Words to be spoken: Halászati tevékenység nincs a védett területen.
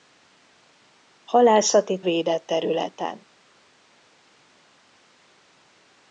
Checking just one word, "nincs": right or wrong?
wrong